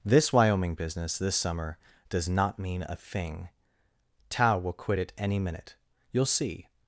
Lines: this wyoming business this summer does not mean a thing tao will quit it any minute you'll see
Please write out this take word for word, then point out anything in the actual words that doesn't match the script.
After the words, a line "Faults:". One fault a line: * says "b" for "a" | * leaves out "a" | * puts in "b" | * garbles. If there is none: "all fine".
this wyoming business this summer does not mean a thing tao will quit it any minute you'll see
Faults:
all fine